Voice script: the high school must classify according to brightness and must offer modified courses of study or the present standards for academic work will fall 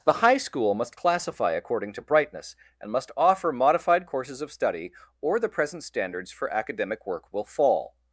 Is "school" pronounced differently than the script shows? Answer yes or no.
no